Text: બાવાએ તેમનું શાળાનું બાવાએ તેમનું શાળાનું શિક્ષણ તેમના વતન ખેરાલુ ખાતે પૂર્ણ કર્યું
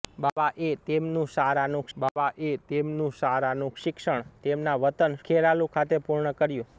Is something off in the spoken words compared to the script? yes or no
no